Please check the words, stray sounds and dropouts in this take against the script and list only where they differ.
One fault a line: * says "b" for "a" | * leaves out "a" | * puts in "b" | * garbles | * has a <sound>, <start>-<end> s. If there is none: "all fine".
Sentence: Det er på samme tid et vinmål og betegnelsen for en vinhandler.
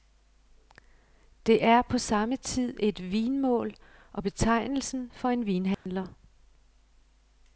* has a dropout, 5.7-5.9 s